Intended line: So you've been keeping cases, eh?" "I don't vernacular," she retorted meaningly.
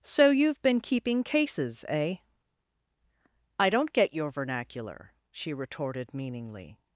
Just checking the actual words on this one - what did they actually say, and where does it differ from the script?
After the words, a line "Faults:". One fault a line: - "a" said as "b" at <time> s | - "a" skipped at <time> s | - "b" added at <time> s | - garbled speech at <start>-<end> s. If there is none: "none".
So you've been keeping cases, eh?" "I don't get your vernacular," she retorted meaningly.
Faults:
- "get your" added at 3.9 s